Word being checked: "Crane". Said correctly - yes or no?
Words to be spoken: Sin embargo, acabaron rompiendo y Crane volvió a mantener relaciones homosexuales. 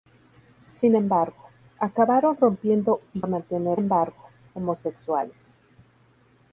no